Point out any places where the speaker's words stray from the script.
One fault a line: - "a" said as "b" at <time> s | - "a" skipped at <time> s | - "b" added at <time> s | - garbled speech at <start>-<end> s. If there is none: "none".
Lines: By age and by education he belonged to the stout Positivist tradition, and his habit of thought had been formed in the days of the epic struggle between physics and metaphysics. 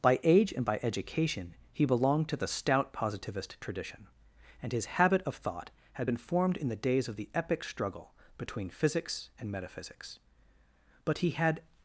- "But he had" added at 11.0 s